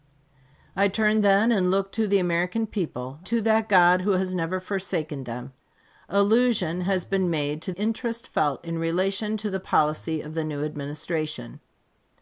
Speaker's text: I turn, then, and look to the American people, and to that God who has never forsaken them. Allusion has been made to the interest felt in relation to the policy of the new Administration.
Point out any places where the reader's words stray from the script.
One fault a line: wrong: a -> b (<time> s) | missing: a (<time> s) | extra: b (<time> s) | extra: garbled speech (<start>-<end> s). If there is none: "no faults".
missing: and (3.2 s)
missing: the (7.7 s)